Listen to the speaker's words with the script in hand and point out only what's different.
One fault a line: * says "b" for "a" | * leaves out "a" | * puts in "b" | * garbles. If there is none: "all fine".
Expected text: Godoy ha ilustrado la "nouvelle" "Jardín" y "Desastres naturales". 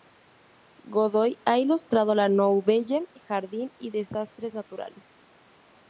all fine